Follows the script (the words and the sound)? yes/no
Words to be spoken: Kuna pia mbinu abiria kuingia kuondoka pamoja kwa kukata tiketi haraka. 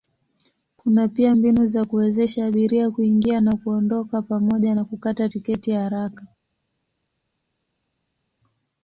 no